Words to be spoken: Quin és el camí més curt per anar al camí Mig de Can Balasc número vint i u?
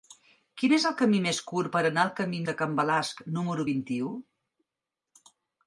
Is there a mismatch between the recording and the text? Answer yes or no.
yes